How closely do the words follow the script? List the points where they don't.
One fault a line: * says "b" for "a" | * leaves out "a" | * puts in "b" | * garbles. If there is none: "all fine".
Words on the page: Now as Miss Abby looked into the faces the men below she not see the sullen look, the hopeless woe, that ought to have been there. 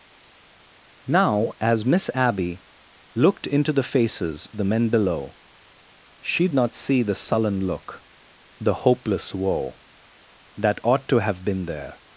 all fine